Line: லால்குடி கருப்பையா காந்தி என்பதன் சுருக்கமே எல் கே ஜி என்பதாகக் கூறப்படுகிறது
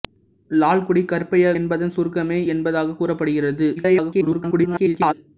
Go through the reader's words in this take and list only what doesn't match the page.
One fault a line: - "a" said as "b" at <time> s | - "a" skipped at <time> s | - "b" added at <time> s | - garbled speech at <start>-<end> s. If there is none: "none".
- "காந்தி" skipped at 1.5 s
- "எல் கே ஜி" skipped at 2.4 s
- garbled speech at 3.8-5.1 s